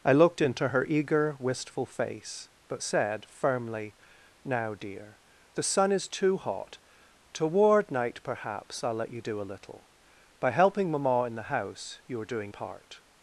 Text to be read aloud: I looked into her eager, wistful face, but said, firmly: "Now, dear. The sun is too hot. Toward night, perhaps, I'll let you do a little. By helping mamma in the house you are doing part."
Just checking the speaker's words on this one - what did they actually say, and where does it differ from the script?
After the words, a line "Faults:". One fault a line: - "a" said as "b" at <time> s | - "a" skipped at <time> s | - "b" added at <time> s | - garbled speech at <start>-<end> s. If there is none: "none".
I looked into her eager, wistful face, but said, firmly: "Now, dear. The sun is too hot. Toward night, perhaps, I'll let you do a little. By helping mamma in the house you are doing part."
Faults:
none